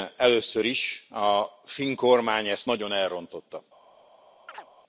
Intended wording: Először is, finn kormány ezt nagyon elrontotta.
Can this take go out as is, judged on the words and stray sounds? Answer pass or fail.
fail